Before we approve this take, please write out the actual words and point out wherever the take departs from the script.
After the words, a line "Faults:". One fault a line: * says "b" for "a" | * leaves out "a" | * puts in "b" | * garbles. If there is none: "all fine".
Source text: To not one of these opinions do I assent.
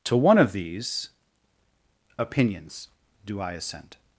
To one of these opinions do I assent.
Faults:
* leaves out "not"